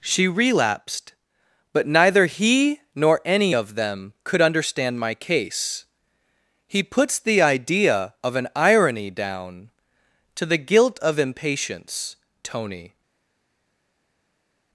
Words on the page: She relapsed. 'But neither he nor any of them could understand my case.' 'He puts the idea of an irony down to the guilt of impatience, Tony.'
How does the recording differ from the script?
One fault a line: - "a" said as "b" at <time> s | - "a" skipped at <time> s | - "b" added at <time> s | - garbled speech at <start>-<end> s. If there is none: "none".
none